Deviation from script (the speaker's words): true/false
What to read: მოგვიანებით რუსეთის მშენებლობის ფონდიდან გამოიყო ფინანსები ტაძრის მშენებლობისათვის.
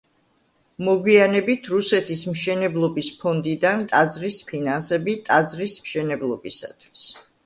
true